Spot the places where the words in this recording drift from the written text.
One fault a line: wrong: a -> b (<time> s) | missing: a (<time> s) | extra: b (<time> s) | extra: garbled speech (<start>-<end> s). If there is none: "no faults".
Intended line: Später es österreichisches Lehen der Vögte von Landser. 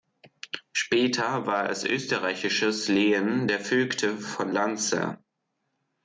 extra: war (1.4 s)